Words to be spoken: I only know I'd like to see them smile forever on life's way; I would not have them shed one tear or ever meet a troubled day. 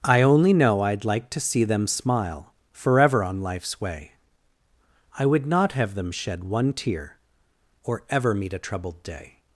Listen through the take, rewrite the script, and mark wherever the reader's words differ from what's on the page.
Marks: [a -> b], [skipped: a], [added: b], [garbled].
I only know I'd like to see them smile forever on life's way; I would not have them shed one tear or ever meet a troubled day.